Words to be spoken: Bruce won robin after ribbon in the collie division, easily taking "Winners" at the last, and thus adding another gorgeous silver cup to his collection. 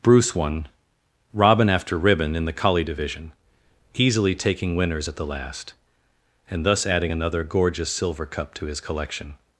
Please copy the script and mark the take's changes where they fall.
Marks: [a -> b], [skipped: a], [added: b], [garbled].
Bruce won robin after ribbon in the collie division, easily taking "Winners" at the last, and thus adding another gorgeous silver cup to his collection.